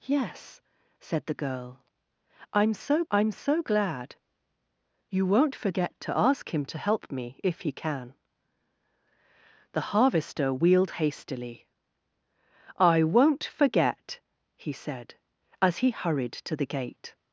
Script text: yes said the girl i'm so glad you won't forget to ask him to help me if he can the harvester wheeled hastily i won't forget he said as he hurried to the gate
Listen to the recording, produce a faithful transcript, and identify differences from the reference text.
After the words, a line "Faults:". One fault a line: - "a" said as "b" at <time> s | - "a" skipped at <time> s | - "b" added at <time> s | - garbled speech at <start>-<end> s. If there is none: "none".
yes said the girl i'm so i'm so glad you won't forget to ask him to help me if he can the harvester wheeled hastily i won't forget he said as he hurried to the gate
Faults:
- "i'm so" added at 3.1 s